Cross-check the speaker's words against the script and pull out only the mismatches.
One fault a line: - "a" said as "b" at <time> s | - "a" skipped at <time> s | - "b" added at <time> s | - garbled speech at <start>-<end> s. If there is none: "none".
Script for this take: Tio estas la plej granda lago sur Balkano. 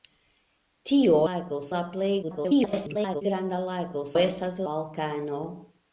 - "estas" said as "lago" at 1.3 s
- garbled speech at 2.2-3.2 s
- "sur" said as "estas" at 4.2 s